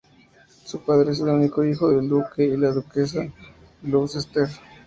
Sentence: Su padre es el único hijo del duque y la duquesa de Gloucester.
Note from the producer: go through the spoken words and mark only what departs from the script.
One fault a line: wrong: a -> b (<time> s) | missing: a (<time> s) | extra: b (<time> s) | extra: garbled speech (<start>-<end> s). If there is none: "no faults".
no faults